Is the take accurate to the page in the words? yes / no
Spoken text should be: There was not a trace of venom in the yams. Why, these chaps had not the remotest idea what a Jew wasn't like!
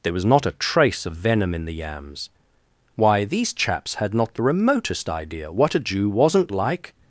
yes